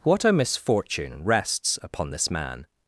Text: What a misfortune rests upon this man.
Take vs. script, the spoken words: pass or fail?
pass